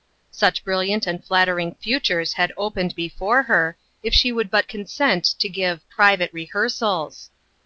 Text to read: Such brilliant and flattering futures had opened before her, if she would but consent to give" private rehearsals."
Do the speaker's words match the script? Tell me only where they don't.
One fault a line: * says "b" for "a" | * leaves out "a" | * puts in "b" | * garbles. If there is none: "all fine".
all fine